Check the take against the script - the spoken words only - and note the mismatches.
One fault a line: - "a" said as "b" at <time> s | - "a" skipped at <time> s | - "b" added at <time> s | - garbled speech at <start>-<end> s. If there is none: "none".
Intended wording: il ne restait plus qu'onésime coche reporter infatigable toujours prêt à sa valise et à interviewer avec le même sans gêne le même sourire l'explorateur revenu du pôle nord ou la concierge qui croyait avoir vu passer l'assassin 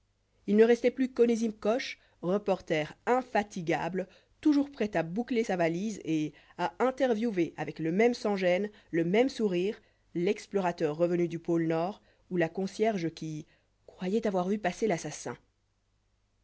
- "boucler" added at 5.0 s